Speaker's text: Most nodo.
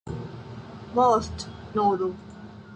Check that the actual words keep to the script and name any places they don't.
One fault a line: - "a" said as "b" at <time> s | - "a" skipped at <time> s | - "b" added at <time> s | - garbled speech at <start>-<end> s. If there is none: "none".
none